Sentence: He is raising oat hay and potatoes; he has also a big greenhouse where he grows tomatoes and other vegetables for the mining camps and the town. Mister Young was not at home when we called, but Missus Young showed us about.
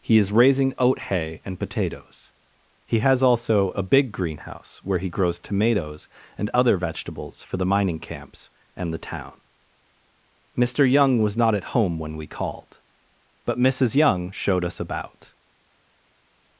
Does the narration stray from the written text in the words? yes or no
no